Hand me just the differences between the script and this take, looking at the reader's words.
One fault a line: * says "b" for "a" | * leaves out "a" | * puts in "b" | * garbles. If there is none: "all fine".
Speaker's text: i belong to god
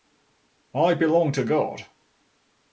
all fine